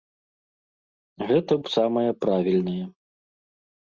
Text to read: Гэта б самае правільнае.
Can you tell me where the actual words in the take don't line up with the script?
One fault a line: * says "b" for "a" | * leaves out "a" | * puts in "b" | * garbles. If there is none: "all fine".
all fine